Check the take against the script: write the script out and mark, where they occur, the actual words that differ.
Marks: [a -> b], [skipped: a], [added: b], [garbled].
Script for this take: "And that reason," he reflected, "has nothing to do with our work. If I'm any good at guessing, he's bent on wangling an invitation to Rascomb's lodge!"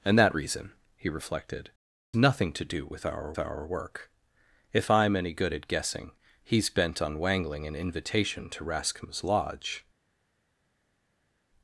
"And that reason," he reflected, [skipped: "has] nothing to do with our [added: our] work. If I'm any good at guessing, he's bent on wangling an invitation to Rascomb's lodge!"